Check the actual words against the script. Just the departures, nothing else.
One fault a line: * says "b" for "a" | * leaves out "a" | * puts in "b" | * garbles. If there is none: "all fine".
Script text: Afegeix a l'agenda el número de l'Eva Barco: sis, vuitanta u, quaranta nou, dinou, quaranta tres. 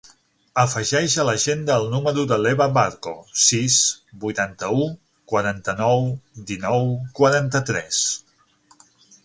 all fine